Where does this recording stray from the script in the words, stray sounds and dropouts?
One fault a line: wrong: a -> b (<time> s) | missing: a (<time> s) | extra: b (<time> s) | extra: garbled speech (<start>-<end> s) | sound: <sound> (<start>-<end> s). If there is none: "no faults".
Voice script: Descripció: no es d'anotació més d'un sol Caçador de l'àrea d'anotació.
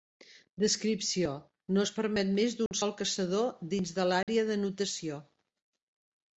wrong: d'anotació -> permet (2.0 s)
sound: dropout (2.7-2.7 s)
extra: dins (3.8 s)
sound: dropout (4.2-4.3 s)